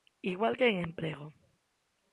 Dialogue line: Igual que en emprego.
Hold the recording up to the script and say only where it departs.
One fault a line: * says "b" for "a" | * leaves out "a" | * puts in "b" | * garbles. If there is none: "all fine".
all fine